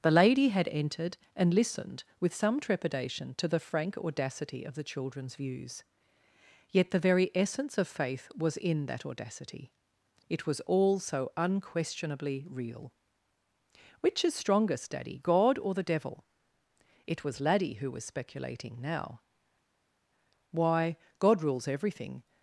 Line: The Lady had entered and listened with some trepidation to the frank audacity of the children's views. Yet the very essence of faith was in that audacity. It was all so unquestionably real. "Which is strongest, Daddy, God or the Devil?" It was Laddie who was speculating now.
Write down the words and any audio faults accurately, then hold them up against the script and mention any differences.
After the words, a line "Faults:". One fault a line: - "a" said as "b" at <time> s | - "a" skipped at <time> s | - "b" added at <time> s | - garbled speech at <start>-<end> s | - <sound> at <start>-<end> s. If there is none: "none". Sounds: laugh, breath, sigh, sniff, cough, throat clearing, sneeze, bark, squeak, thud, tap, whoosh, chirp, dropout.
The Lady had entered and listened with some trepidation to the frank audacity of the children's views. Yet the very essence of faith was in that audacity. It was all so unquestionably real. "Which is strongest, Daddy, God or the Devil?" It was Laddie who was speculating now. "Why, God rules everything
Faults:
- "Why God rules everything" added at 20.5 s